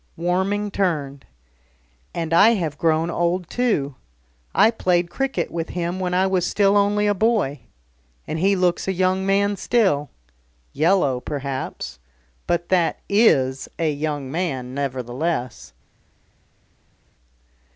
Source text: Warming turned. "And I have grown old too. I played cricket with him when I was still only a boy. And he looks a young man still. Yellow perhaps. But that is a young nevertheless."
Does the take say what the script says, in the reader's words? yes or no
no